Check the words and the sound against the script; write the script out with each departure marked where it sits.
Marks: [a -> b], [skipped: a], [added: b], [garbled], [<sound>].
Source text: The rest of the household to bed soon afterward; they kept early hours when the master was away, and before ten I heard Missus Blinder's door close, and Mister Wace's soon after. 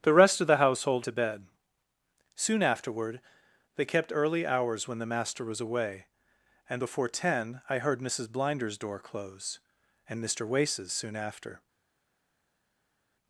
The rest of the household to bed soon afterward; they kept early hours when the master was away, and before ten I heard Missus Blinder's door close, and Mister Wace's soon after.